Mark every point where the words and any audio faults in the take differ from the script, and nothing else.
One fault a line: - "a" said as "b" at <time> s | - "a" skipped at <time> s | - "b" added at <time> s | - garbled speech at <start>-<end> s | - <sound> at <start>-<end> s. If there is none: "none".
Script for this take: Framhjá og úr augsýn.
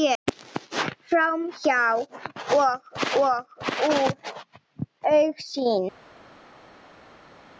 - "og" added at 3.2 s